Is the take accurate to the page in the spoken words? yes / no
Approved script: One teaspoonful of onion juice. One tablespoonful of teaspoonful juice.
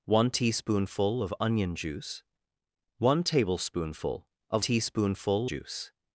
yes